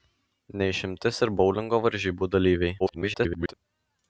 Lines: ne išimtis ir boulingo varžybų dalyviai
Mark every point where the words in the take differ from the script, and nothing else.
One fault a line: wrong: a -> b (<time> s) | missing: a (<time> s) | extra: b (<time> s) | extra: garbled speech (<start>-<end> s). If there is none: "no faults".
extra: garbled speech (2.8-3.5 s)